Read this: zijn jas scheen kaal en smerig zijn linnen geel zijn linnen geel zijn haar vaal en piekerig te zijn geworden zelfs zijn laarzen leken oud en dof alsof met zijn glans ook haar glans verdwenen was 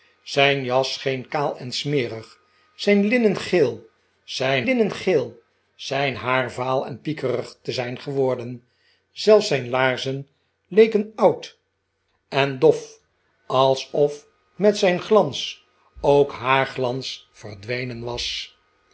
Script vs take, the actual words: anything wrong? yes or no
no